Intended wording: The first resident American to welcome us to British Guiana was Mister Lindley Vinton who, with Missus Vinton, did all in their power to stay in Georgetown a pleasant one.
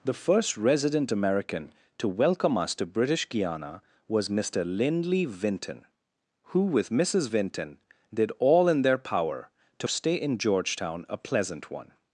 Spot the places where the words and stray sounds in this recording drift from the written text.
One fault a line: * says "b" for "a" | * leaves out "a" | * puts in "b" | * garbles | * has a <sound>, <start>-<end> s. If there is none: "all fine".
all fine